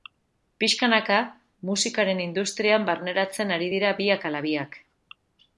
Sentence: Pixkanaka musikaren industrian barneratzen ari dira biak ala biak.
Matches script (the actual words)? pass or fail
pass